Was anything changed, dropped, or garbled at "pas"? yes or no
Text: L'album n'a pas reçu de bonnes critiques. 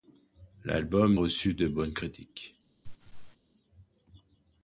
yes